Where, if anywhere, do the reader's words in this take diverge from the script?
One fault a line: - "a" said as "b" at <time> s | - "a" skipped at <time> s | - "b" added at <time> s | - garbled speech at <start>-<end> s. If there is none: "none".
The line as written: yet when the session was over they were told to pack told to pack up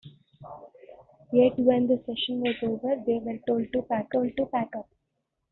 none